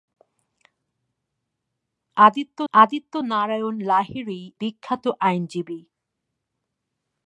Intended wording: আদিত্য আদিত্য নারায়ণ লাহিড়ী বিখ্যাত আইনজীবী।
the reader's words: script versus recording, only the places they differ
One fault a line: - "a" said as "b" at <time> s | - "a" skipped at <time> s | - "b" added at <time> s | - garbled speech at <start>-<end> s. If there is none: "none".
none